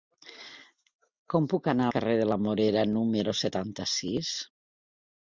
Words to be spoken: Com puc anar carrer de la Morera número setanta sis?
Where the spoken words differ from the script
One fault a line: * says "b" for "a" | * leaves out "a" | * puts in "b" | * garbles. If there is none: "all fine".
all fine